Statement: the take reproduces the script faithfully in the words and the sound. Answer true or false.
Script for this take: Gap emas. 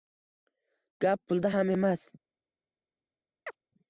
false